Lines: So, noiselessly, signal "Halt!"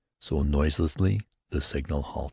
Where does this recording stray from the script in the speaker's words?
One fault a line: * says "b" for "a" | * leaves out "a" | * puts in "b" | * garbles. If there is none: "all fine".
* puts in "the"